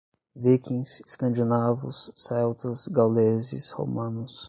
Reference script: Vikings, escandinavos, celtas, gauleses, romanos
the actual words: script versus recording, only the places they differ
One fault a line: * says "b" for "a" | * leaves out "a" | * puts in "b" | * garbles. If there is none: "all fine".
all fine